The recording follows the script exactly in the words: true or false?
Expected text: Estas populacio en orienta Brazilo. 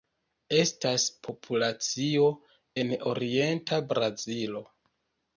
true